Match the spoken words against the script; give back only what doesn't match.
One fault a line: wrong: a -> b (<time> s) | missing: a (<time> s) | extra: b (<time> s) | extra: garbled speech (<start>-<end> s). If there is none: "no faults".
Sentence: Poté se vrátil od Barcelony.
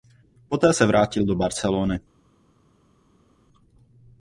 wrong: od -> do (1.3 s)